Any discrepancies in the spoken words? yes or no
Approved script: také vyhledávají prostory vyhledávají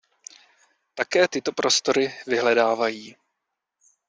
yes